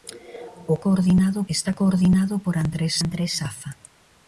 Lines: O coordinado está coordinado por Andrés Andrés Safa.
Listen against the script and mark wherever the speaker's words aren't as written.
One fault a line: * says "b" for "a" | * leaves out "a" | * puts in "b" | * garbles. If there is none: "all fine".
all fine